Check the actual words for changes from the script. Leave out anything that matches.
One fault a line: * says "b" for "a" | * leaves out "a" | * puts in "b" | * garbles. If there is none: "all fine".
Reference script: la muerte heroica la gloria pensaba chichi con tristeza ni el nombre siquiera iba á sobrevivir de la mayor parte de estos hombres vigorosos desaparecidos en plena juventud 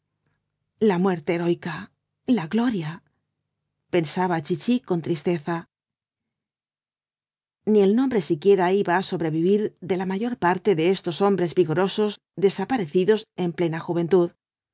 all fine